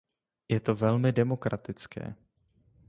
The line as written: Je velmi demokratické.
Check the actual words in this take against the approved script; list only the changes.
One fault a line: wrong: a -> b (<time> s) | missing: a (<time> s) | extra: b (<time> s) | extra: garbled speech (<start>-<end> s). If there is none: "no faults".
extra: to (0.6 s)